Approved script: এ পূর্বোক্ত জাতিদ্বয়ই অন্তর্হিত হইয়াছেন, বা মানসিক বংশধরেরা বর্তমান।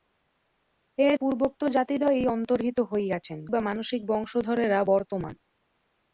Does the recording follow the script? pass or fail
pass